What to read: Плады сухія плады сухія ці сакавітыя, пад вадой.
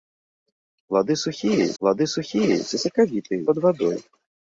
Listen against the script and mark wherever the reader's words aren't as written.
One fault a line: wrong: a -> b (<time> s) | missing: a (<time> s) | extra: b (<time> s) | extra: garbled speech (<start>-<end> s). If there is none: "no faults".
no faults